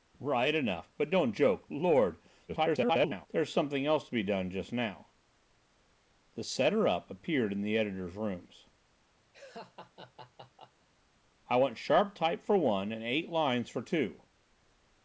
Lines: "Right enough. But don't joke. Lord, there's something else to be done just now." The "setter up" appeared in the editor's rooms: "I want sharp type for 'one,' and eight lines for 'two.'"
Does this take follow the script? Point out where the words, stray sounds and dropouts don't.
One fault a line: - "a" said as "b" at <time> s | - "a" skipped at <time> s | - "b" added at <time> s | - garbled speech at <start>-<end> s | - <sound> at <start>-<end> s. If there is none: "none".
- garbled speech at 2.5-3.3 s
- laugh at 9.3-10.9 s